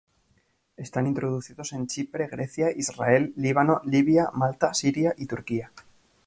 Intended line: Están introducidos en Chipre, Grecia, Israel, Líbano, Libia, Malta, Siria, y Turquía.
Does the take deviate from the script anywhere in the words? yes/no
no